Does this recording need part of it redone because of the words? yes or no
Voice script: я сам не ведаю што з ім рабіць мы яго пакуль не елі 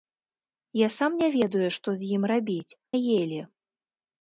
yes